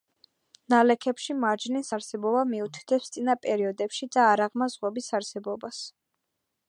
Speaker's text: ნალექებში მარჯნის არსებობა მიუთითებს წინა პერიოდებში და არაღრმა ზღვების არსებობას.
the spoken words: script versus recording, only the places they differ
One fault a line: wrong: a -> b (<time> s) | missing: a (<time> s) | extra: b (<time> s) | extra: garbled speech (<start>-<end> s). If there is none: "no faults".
no faults